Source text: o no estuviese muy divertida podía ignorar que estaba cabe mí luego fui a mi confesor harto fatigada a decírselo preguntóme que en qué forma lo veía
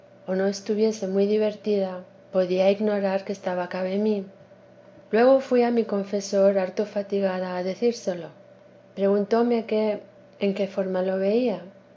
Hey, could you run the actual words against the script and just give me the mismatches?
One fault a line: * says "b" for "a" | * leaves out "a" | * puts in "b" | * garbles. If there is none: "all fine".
all fine